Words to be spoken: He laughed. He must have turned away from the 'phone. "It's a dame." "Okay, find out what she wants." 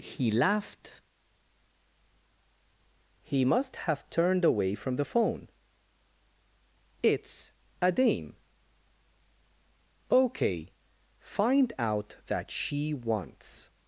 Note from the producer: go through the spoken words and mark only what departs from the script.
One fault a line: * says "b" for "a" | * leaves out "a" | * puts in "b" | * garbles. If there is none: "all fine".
* says "that" for "what"